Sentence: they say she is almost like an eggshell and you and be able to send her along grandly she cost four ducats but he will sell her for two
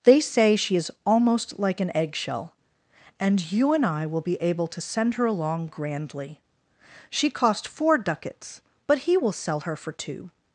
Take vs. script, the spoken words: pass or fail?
fail